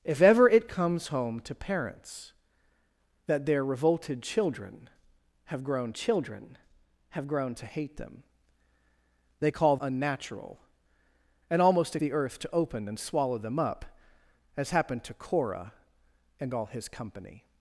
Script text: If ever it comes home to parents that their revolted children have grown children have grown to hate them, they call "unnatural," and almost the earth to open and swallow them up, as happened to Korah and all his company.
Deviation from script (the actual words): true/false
false